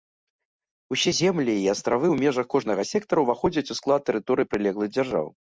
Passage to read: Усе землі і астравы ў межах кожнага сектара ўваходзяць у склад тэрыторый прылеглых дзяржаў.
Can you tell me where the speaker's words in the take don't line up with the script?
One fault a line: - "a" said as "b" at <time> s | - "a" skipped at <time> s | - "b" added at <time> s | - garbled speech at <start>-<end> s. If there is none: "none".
none